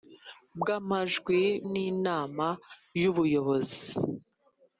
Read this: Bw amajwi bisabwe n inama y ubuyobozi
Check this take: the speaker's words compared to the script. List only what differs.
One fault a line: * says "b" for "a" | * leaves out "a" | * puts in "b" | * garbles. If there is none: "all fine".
* leaves out "bisabwe"